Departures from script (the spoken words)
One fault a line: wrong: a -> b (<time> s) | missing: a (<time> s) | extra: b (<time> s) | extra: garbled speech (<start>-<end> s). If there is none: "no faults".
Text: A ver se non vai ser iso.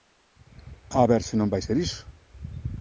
no faults